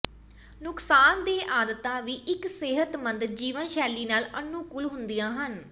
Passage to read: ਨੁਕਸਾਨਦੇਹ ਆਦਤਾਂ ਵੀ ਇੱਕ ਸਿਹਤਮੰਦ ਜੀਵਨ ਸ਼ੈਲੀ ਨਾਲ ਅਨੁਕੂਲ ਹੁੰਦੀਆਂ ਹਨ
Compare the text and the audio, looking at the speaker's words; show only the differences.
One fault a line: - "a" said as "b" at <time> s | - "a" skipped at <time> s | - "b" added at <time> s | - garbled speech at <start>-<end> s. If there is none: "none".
none